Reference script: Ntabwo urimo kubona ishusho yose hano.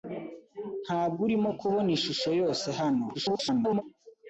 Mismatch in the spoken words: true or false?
true